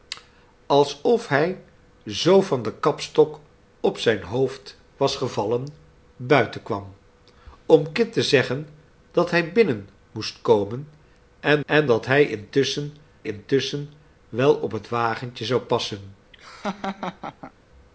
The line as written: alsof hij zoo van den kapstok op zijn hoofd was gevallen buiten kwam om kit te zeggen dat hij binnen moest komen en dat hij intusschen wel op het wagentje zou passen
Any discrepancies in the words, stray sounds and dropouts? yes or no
yes